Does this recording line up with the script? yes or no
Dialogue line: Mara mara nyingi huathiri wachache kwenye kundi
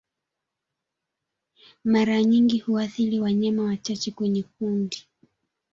no